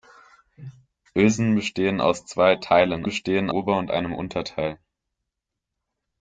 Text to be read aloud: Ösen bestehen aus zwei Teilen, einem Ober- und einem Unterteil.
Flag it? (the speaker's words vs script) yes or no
yes